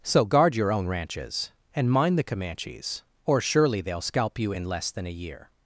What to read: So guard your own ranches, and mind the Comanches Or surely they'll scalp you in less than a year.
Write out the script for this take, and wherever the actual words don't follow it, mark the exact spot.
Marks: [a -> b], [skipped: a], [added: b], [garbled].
So guard your own ranches, and mind the Comanches Or surely they'll scalp you in less than a year.